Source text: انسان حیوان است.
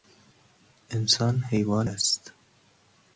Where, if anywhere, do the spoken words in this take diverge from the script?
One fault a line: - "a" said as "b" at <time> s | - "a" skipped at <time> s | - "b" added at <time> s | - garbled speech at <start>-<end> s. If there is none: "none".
none